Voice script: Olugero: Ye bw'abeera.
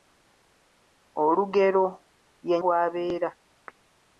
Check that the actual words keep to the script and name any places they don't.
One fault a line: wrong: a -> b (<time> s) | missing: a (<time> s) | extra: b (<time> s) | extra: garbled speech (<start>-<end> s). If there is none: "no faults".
no faults